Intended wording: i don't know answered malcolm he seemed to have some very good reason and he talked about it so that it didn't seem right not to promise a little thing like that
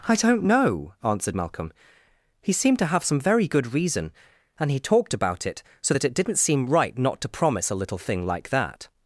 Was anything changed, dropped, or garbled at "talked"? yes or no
no